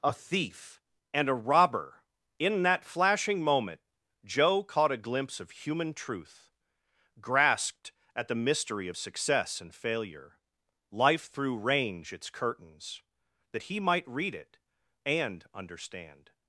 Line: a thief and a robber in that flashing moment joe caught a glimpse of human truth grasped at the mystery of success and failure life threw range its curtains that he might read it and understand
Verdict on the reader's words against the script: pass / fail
pass